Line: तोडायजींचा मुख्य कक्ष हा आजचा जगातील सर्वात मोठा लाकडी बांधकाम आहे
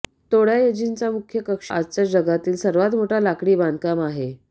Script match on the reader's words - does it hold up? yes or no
no